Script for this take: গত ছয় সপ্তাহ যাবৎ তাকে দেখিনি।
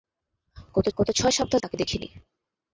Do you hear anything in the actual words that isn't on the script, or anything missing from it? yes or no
yes